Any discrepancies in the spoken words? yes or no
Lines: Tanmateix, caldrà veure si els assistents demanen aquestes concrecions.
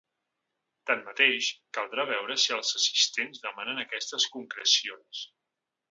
no